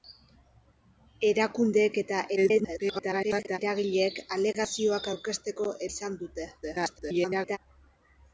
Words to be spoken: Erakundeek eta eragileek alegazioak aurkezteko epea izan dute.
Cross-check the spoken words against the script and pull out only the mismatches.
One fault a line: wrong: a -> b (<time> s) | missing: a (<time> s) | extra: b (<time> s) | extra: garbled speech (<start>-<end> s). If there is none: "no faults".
extra: garbled speech (2.4-3.6 s)
missing: epea (5.7 s)
extra: garbled speech (6.6-7.6 s)